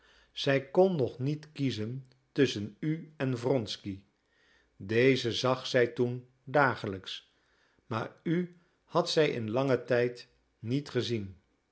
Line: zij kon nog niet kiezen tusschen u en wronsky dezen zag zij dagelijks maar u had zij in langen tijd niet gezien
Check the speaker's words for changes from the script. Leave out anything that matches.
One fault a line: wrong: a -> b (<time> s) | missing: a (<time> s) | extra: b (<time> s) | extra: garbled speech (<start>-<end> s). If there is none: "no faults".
extra: toen (5.8 s)